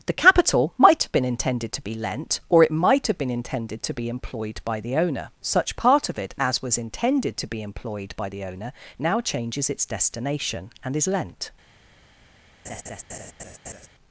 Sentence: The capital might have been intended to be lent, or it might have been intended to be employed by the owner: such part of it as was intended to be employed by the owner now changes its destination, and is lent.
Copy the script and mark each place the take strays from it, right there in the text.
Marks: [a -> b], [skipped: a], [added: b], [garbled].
The capital might have been intended to be lent, or it might have been intended to be employed by the owner: such part of it as was intended to be employed by the owner now changes its destination, and is lent.